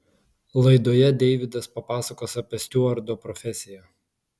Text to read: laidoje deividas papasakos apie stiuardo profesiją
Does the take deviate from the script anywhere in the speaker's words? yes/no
no